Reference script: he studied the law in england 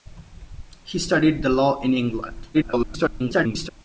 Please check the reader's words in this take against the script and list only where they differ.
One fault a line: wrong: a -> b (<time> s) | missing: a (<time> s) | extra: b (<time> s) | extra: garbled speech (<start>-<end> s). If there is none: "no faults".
extra: garbled speech (2.5-3.7 s)